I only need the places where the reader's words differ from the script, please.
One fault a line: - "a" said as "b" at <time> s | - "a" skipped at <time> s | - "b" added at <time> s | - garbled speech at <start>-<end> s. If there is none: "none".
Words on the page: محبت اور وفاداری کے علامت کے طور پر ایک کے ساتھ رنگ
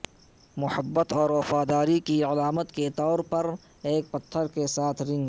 - "کے" said as "کی" at 2.0 s
- "پتھر" added at 4.1 s